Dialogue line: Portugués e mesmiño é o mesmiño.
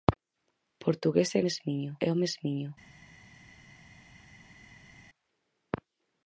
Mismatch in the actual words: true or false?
false